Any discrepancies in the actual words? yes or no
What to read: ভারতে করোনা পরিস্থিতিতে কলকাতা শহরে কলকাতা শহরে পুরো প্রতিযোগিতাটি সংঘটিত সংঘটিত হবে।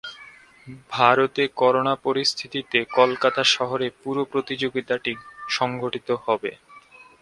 yes